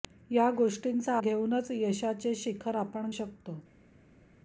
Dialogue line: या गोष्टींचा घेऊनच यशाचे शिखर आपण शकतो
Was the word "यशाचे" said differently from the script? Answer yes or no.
no